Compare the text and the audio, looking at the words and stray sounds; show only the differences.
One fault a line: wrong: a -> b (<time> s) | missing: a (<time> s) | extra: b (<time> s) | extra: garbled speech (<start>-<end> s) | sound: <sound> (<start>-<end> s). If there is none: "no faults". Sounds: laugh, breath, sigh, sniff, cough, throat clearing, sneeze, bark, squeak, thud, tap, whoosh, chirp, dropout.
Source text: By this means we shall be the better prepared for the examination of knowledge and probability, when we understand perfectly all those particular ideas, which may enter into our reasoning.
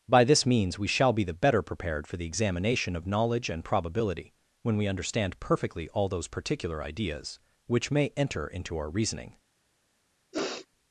sound: sniff (10.3-10.7 s)